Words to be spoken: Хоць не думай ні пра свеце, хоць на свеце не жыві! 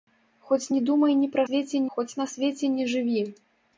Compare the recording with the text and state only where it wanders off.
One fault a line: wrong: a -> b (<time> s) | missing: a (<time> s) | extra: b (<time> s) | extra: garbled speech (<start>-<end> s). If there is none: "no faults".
no faults